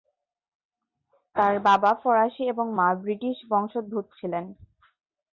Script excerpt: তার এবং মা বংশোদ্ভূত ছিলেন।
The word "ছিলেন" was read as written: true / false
true